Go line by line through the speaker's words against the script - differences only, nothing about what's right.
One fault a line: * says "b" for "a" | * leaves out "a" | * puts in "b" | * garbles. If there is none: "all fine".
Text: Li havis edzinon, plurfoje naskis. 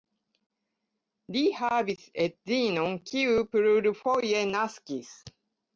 * puts in "kiu"